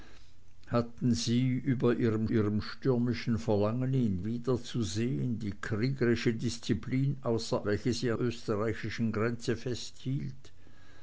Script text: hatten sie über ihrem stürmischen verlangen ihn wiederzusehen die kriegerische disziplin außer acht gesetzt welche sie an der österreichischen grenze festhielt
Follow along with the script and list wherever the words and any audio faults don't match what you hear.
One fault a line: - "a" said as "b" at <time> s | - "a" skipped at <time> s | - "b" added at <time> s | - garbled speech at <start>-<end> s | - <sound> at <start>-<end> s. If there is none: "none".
- "ihrem" added at 2.3 s
- "acht gesetzt" skipped at 7.7 s
- "an der" skipped at 8.1 s